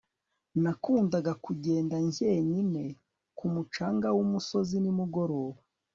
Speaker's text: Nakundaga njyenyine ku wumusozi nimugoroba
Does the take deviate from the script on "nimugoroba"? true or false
false